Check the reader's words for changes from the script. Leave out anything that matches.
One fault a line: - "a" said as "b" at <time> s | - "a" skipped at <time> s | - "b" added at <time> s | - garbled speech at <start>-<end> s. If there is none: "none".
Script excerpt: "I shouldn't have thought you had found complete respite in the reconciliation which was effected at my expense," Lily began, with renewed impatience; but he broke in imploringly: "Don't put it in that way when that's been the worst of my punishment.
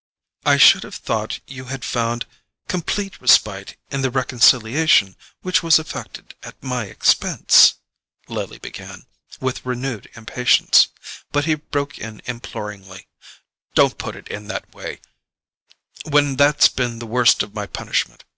- "shouldn't" said as "should" at 0.6 s